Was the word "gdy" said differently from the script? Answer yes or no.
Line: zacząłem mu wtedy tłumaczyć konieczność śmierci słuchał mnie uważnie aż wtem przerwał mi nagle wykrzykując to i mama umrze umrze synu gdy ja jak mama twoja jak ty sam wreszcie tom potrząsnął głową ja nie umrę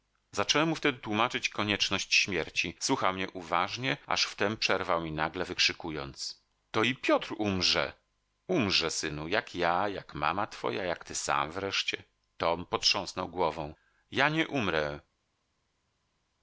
yes